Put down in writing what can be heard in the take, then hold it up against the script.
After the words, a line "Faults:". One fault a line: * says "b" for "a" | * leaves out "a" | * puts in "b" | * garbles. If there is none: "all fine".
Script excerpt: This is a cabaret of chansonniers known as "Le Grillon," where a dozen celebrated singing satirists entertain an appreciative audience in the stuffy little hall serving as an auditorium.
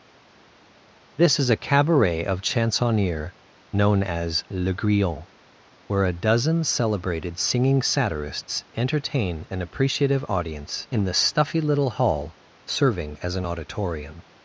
This is a cabaret of chansonniers known as "Le Grillon," where a dozen celebrated singing satirists entertain an appreciative audience in the stuffy little hall serving as an auditorium.
Faults:
all fine